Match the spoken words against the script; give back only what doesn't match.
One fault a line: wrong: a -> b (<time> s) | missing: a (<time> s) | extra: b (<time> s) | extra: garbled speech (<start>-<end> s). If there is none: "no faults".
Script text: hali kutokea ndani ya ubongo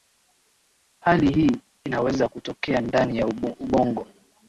extra: hii inaweza (1.3 s)